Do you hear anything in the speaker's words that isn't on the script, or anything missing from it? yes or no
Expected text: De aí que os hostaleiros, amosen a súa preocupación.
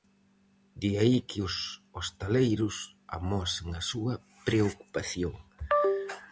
no